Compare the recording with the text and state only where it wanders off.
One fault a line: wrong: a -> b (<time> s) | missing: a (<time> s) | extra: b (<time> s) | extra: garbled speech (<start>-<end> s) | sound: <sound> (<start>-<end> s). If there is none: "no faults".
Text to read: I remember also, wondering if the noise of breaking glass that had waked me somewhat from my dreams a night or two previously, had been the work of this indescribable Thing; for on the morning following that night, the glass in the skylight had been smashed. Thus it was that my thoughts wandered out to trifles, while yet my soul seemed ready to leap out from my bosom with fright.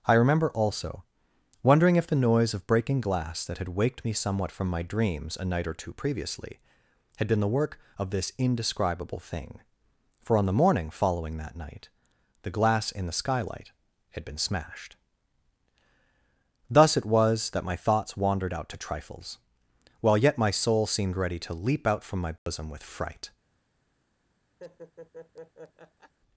sound: dropout (22.4-22.5 s)
sound: laugh (24.6-26.1 s)